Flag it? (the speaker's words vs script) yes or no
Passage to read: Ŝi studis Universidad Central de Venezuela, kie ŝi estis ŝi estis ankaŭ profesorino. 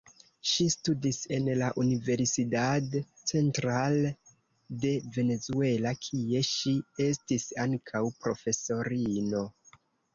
yes